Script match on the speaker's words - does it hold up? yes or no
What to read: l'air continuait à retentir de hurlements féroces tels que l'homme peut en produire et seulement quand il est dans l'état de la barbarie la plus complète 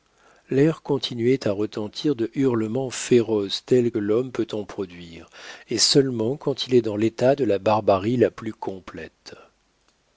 no